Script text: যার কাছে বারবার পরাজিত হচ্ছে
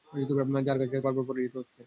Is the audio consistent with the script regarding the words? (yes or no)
yes